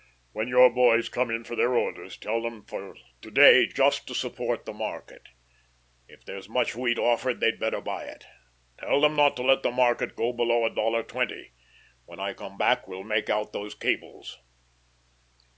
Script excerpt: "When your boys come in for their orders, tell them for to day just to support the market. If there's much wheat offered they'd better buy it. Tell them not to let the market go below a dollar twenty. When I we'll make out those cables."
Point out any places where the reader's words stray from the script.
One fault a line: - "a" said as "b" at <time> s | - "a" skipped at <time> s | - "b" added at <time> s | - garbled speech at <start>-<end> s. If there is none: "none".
- "come back" added at 12.3 s